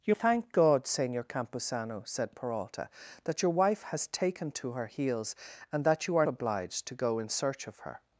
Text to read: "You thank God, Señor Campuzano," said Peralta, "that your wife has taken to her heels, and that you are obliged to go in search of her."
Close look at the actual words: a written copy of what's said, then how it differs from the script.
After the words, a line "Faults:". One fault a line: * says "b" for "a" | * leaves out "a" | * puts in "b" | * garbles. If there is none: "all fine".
"You thank God, Señor Campuzano," said Peralta, "that your wife has taken to her heels, and that you are obliged to go in search of her."
Faults:
all fine